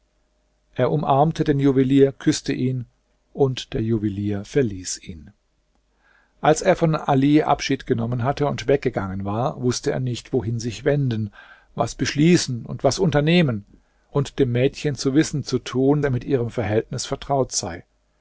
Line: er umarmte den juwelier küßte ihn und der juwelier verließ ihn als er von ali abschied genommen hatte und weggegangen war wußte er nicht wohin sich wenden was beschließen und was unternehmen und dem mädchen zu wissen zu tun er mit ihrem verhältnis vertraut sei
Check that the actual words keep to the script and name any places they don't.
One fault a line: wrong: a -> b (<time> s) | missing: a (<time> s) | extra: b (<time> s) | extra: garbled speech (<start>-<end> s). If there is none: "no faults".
no faults